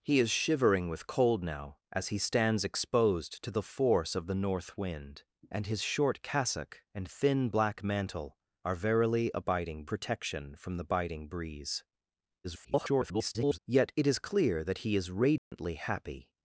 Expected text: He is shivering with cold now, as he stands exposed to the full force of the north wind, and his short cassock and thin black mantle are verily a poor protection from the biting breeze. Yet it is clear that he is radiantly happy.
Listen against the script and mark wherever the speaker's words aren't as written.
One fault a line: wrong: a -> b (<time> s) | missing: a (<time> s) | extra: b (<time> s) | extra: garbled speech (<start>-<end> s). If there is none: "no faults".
missing: full (3.6 s)
wrong: poor -> biting (9.4 s)
extra: garbled speech (12.4-13.6 s)